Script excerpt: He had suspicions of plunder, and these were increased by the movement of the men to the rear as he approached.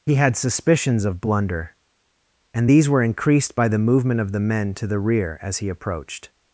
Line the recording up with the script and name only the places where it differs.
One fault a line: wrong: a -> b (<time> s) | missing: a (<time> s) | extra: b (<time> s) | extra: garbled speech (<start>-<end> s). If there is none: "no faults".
wrong: plunder -> blunder (1.2 s)